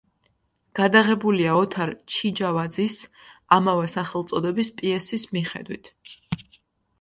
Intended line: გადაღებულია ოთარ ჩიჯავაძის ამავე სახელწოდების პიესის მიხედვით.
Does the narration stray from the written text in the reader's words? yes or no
no